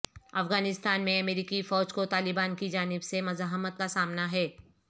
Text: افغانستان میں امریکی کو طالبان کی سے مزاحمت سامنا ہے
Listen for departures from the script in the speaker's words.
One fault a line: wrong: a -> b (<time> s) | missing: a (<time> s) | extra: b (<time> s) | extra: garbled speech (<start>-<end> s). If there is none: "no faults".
extra: فوج (1.6 s)
extra: جانب (2.7 s)
extra: کا (3.8 s)